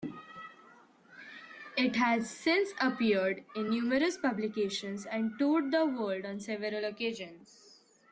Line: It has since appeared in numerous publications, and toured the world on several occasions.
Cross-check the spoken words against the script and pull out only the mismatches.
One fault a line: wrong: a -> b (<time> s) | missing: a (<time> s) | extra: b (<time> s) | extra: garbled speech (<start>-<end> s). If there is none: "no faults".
no faults